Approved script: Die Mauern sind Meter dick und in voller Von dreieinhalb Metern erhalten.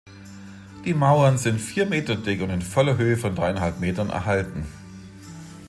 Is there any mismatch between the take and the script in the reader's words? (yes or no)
yes